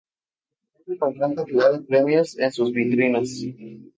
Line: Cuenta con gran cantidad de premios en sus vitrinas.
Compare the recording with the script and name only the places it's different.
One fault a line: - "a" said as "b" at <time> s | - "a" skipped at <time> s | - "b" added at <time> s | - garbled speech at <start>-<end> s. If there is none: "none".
none